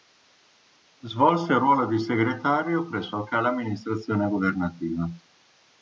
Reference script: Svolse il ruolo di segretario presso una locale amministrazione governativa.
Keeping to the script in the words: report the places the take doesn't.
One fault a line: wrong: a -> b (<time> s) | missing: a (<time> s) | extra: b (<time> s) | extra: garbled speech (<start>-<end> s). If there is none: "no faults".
missing: una (3.1 s)